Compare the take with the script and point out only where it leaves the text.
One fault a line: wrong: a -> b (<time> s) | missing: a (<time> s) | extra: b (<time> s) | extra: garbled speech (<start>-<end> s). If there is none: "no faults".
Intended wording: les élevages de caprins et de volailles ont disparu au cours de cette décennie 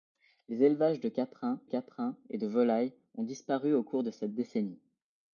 extra: caprins (1.6 s)